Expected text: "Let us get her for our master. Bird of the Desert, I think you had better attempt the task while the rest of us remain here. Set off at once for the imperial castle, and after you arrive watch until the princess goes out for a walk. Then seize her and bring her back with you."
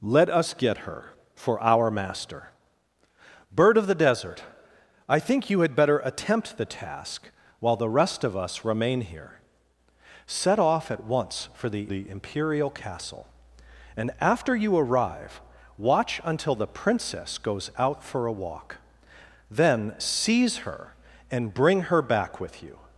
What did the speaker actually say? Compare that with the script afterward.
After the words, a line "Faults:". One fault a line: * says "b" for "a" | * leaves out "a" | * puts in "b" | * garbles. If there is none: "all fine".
"Let us get her for our master. Bird of the Desert, I think you had better attempt the task while the rest of us remain here. Set off at once for the the imperial castle, and after you arrive watch until the princess goes out for a walk. Then seize her and bring her back with you."
Faults:
* puts in "the"